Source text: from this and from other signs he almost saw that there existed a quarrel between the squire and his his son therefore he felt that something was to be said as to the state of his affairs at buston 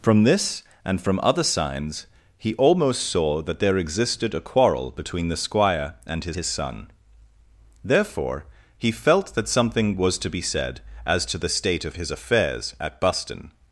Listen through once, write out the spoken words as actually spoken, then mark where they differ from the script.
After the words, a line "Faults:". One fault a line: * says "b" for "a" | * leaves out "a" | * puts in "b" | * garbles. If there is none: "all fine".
from this and from other signs he almost saw that there existed a quarrel between the squire and his his son therefore he felt that something was to be said as to the state of his affairs at buston
Faults:
all fine